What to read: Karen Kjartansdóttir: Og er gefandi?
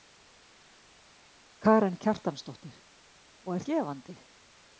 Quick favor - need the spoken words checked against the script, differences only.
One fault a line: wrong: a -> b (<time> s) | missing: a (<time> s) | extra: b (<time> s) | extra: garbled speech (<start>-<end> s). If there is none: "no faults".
no faults